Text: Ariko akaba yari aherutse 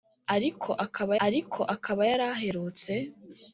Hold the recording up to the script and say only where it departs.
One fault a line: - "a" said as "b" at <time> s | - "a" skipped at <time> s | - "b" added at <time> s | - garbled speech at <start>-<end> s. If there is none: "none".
- "ariko akaba" added at 1.3 s